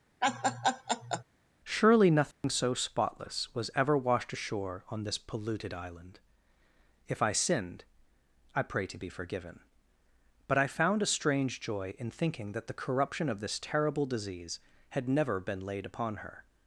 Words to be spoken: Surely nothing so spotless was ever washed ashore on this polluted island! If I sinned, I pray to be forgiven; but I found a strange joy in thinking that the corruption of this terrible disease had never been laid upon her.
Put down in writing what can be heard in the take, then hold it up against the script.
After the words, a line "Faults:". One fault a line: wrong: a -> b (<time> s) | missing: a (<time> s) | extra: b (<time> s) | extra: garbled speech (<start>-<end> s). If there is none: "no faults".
Surely nothing so spotless was ever washed ashore on this polluted island! If I sinned, I pray to be forgiven; but I found a strange joy in thinking that the corruption of this terrible disease had never been laid upon her.
Faults:
no faults